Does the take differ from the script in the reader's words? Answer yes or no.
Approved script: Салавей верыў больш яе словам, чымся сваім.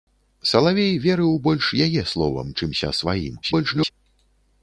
yes